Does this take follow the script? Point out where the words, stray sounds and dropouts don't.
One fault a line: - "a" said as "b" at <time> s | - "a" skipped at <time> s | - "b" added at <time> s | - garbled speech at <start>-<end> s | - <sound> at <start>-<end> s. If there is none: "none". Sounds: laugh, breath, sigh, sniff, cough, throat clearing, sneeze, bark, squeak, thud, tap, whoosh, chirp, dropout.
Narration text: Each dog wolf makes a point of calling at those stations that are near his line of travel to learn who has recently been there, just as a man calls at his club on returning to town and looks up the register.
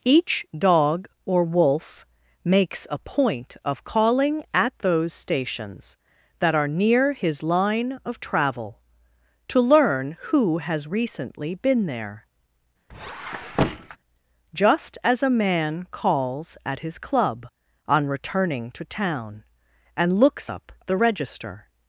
- "or" added at 1.3 s
- squeak at 12.9-14.0 s